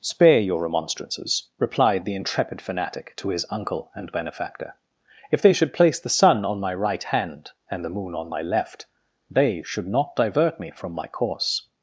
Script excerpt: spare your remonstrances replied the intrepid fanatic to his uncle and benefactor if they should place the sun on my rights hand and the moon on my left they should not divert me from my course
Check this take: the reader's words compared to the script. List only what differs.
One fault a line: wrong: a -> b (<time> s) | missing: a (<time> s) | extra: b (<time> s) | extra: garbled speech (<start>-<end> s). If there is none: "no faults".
wrong: rights -> right (6.7 s)